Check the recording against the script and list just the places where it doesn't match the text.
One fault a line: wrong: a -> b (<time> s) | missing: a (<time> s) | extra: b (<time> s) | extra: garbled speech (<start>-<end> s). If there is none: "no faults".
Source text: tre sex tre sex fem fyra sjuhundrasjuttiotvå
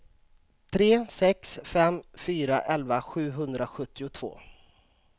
missing: tre sex (1.6 s)
extra: elva (2.8 s)